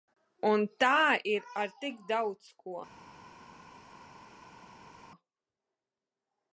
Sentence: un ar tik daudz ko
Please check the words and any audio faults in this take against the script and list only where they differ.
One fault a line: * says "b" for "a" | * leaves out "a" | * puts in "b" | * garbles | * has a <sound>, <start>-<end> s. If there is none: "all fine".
* puts in "tā ir"